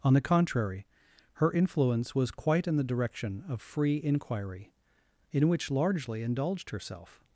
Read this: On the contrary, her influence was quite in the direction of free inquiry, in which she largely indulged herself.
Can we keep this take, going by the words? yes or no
no